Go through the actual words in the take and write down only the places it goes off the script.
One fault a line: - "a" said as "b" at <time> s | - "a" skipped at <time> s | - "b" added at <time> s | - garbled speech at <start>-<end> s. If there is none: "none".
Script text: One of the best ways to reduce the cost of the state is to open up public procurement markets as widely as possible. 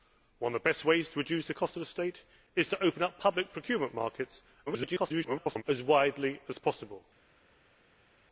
- garbled speech at 4.7-5.6 s